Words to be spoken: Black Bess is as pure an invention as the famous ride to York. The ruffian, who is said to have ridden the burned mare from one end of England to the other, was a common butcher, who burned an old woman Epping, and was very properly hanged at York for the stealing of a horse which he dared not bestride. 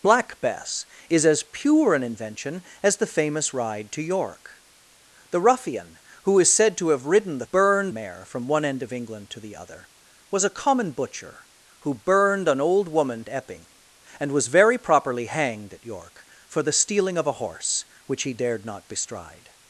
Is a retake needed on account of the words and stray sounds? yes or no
no